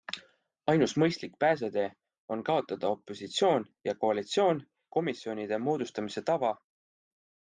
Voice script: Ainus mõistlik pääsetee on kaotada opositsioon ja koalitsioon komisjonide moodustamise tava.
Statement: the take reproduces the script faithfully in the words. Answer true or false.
true